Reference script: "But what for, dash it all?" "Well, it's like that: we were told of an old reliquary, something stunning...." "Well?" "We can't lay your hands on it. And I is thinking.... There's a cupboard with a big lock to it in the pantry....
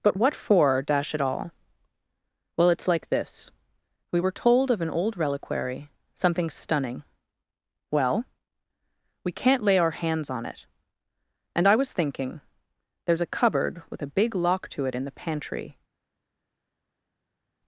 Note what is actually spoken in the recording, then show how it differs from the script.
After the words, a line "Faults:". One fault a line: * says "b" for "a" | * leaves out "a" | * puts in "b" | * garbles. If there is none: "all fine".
"But what for, dash it all?" "Well, it's like this: we were told of an old reliquary, something stunning...." "Well?" "We can't lay our hands on it. And I was thinking.... There's a cupboard with a big lock to it in the pantry....
Faults:
* says "this" for "that"
* says "our" for "your"
* says "was" for "is"